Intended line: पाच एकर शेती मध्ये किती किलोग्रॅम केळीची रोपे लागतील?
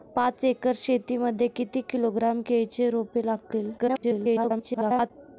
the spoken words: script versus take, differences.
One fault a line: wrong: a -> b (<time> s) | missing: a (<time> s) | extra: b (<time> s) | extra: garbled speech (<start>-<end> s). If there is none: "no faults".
extra: garbled speech (3.8-5.1 s)